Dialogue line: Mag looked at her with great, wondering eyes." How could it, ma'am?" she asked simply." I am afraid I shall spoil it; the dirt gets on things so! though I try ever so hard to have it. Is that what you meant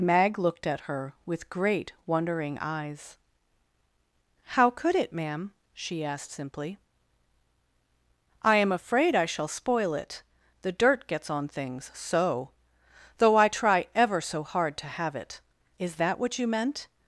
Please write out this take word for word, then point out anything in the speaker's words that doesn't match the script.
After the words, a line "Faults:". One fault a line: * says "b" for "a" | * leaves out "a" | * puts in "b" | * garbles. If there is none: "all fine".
Mag looked at her with great, wondering eyes." How could it, ma'am?" she asked simply." I am afraid I shall spoil it; the dirt gets on things so! though I try ever so hard to have it. Is that what you meant
Faults:
all fine